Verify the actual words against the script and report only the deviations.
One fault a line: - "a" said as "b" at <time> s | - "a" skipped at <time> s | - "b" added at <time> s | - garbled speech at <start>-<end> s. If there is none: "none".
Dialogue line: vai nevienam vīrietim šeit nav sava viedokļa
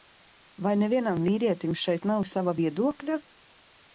none